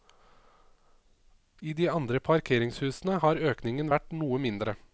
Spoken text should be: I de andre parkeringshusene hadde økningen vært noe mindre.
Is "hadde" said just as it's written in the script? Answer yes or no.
no